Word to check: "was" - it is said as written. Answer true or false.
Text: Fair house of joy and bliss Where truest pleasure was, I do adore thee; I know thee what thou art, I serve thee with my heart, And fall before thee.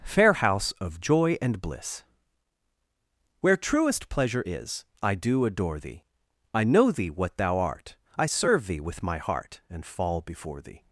false